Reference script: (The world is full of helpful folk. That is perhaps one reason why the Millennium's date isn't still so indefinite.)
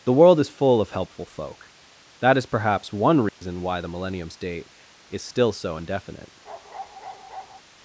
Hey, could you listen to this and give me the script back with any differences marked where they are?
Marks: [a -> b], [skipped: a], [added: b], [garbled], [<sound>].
(The world is full of helpful folk. That is perhaps one reason [dropout] why the Millennium's date [isn't -> is] still so indefinite.) [bark]